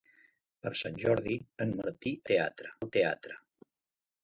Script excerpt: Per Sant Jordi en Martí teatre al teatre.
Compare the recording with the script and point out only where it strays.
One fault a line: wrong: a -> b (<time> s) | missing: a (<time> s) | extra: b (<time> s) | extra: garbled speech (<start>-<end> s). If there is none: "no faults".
no faults